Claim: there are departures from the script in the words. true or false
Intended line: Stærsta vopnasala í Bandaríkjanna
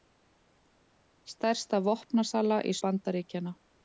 false